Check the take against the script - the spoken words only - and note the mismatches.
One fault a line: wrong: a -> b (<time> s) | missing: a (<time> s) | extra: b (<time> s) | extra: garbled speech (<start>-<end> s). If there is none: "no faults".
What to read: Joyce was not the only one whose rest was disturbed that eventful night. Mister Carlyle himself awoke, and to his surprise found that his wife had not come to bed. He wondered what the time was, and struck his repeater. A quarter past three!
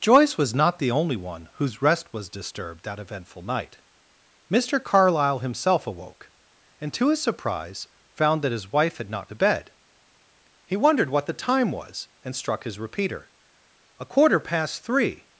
missing: come (9.3 s)